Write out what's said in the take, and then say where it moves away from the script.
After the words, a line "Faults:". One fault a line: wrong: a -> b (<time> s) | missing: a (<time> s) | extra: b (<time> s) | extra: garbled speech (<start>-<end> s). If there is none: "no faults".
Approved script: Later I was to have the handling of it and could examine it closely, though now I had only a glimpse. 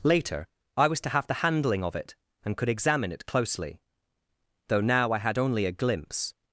Later I was to have the handling of it and could examine it closely, though now I had only a glimpse.
Faults:
no faults